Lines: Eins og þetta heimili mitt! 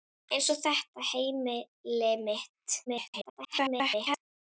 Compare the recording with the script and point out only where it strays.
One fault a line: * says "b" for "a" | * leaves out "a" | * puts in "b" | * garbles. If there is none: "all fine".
* garbles